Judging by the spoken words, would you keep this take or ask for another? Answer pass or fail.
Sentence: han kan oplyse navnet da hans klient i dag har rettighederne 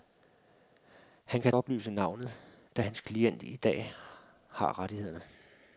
pass